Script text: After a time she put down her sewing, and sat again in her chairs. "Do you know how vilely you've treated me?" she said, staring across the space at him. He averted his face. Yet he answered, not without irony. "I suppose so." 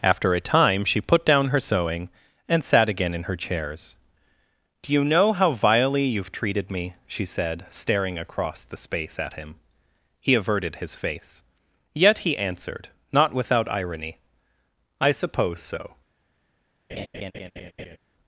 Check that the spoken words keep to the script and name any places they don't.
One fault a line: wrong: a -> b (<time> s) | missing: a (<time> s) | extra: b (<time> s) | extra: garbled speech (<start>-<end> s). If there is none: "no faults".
no faults